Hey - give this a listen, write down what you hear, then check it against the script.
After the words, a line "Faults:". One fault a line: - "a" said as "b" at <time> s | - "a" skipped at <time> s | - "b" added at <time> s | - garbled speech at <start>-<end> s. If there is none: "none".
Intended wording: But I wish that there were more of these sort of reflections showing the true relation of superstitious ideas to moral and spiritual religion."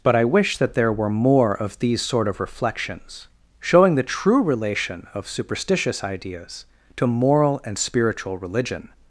But I wish that there were more of these sort of reflections showing the true relation of superstitious ideas to moral and spiritual religion."
Faults:
none